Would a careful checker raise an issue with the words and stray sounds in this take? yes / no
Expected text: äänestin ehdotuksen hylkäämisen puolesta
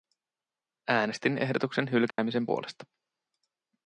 yes